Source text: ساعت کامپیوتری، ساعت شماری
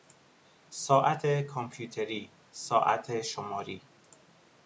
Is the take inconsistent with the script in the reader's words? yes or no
no